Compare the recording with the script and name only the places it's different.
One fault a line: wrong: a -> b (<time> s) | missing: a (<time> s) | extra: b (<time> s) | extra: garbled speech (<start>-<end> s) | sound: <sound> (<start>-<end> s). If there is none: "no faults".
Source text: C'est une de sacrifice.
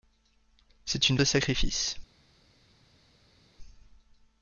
no faults